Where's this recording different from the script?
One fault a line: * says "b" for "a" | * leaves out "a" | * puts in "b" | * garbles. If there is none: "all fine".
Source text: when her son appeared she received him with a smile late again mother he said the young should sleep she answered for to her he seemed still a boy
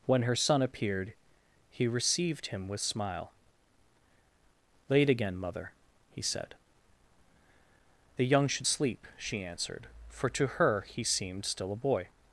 * says "he" for "she"
* leaves out "a"